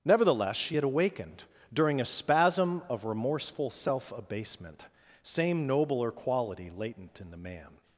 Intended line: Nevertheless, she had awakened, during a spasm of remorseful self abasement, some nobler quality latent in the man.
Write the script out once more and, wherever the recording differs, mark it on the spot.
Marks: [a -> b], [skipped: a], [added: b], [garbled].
Nevertheless, she had awakened, during a spasm of remorseful self abasement, [some -> same] nobler quality latent in the man.